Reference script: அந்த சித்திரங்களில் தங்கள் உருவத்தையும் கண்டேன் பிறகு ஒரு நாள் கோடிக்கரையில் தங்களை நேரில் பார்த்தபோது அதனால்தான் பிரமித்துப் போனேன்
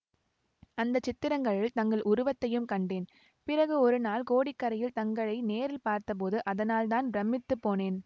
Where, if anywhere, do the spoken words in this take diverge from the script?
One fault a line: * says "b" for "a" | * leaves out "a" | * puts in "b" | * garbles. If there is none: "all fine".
all fine